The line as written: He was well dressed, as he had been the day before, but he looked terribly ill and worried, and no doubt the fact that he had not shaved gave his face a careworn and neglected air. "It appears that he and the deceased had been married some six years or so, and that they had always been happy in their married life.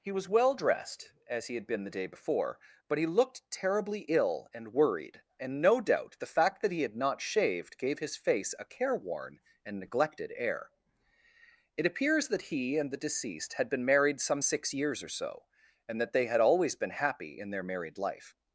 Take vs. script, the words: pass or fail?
pass